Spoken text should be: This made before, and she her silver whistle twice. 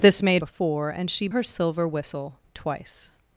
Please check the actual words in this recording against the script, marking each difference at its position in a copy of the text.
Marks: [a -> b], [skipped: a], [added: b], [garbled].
This made before, and she her silver whistle twice.